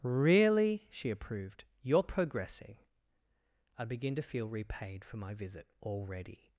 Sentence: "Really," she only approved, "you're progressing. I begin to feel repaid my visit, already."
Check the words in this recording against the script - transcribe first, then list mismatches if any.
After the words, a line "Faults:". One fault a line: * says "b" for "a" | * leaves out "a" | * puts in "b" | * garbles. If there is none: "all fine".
"Really," she approved, "you're progressing. I begin to feel repaid for my visit, already."
Faults:
* leaves out "only"
* puts in "for"